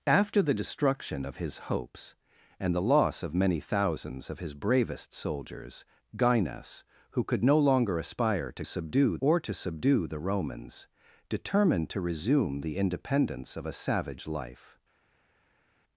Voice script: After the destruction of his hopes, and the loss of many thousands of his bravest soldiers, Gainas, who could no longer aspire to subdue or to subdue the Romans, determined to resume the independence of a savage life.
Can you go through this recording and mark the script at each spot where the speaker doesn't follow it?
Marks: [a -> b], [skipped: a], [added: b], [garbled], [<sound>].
After the destruction of his hopes, and the loss of many thousands of his bravest soldiers, Gainas, who could no longer aspire to subdue or to subdue the Romans, determined to resume the independence of a savage life.